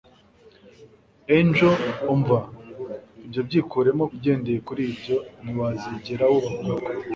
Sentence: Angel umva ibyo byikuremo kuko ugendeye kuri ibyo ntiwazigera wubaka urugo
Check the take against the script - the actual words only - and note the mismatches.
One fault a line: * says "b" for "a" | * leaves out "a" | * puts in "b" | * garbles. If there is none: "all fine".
* leaves out "kuko"